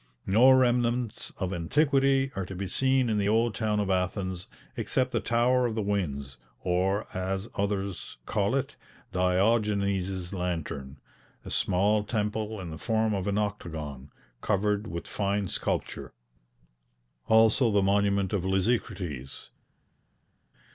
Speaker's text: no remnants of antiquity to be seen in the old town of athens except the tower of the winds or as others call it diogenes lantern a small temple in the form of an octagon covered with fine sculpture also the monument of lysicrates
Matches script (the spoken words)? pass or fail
fail